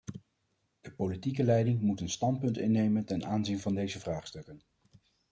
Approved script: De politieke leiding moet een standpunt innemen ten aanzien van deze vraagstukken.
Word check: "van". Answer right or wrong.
right